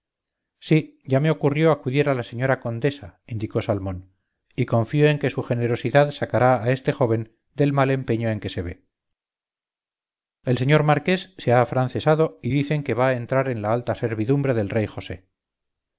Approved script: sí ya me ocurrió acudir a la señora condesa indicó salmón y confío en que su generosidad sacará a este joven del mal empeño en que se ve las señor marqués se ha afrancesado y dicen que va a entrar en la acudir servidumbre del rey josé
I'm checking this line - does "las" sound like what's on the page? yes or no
no